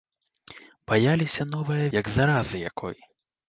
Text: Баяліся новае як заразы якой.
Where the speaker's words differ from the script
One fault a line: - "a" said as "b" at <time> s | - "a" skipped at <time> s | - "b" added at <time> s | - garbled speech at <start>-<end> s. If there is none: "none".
none